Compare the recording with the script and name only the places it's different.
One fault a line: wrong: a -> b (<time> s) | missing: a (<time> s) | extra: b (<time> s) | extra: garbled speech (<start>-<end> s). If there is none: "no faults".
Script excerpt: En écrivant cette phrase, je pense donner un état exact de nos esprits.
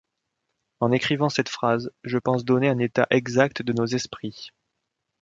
no faults